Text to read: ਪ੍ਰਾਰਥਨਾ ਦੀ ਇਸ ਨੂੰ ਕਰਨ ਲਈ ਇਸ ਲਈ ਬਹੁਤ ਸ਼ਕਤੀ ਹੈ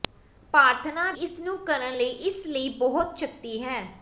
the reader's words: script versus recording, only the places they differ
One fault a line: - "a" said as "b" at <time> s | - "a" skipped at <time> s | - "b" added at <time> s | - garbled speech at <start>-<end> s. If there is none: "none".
- "ਦੀ" skipped at 1.1 s